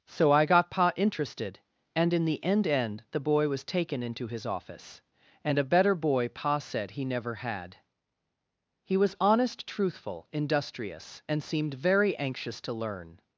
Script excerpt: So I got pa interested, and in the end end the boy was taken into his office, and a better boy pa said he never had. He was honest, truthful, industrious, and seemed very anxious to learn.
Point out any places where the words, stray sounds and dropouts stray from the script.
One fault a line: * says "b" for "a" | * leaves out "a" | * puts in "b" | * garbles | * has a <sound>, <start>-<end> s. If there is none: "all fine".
all fine